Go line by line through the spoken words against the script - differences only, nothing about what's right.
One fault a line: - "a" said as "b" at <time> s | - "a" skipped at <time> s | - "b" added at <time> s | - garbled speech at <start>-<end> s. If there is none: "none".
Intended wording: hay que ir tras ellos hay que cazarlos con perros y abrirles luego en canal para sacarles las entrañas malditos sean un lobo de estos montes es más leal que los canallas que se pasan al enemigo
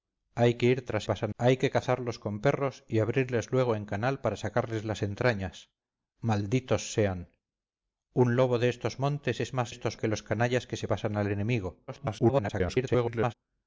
- "ellos" said as "pasan" at 1.0 s
- "leal" said as "estos" at 9.7 s
- garbled speech at 11.9-13.3 s